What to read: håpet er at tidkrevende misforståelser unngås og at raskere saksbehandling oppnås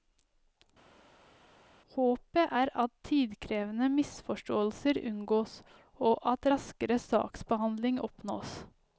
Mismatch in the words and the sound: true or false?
false